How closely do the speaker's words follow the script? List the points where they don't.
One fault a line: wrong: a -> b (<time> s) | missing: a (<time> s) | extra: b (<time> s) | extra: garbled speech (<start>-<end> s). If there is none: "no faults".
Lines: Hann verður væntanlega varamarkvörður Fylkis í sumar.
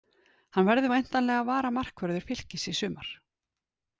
no faults